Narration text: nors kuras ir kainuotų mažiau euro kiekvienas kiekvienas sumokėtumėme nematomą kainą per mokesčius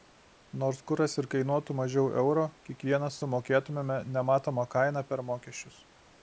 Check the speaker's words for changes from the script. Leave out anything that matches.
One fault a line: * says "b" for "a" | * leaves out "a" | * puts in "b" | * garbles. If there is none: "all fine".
* leaves out "kiekvienas"